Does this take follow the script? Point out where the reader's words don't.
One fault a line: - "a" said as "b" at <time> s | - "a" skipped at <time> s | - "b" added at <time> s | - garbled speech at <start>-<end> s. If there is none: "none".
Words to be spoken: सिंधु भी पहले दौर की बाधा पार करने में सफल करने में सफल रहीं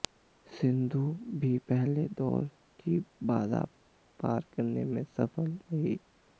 - "करने में सफल" skipped at 5.5 s